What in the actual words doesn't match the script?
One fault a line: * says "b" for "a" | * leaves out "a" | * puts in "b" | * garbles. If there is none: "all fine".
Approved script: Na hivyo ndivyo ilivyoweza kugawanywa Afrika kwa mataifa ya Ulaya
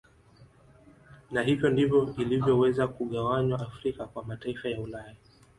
all fine